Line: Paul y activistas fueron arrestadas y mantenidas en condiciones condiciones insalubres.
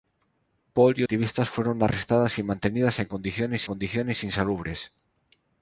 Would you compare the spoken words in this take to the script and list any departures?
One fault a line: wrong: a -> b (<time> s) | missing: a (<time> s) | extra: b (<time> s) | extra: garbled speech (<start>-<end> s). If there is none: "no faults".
no faults